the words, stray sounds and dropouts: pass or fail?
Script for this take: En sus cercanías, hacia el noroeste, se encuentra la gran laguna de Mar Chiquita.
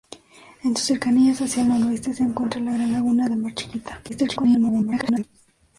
fail